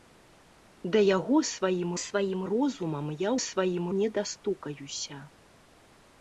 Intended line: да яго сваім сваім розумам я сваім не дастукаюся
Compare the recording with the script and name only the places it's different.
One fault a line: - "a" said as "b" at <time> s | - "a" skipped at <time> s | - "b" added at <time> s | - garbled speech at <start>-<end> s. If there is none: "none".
none